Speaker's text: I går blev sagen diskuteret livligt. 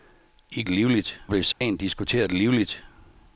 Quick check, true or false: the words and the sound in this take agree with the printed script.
false